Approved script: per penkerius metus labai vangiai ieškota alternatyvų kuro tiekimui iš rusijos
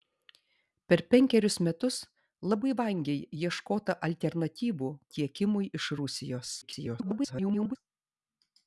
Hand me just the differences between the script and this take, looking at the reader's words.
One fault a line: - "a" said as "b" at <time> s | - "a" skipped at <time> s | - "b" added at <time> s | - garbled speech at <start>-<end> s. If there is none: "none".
- "kuro" skipped at 4.9 s
- garbled speech at 6.6-7.8 s